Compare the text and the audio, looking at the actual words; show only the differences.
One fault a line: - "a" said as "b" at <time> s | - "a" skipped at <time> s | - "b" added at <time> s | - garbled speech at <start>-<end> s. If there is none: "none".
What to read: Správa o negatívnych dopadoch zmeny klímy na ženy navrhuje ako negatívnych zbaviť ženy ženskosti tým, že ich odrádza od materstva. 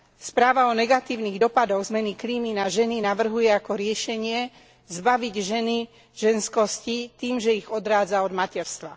- "negatívnych" said as "riešenie" at 3.8 s